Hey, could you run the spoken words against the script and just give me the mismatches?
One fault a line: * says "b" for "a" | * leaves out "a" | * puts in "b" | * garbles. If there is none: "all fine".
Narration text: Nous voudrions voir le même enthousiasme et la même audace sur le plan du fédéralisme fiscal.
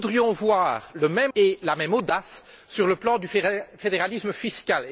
* leaves out "enthousiasme"